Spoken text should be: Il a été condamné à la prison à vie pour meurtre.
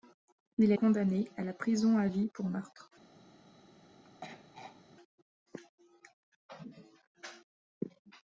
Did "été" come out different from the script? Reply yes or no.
yes